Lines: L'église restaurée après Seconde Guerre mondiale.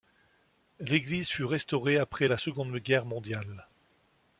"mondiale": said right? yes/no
yes